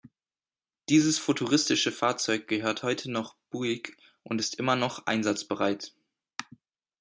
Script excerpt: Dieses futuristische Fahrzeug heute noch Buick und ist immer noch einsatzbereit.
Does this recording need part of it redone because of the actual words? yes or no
yes